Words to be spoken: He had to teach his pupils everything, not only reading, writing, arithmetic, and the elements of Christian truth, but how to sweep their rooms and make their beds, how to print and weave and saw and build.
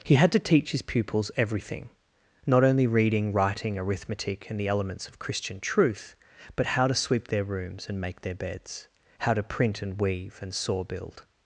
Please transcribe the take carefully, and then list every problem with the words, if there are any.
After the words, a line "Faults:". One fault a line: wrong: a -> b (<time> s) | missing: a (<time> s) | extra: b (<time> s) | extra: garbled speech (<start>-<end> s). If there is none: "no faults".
He had to teach his pupils everything, not only reading, writing, arithmetic, and the elements of Christian truth, but how to sweep their rooms and make their beds, how to print and weave and saw build.
Faults:
missing: and (10.8 s)